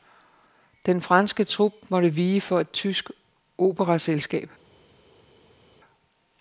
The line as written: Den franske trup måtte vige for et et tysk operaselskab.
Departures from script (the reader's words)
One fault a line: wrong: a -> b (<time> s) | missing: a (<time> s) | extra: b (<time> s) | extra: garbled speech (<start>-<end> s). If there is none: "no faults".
missing: et (2.7 s)